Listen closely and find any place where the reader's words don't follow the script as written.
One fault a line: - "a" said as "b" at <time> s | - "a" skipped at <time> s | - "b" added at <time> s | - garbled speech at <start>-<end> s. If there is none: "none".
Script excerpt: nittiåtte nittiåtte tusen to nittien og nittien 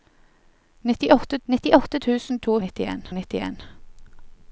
none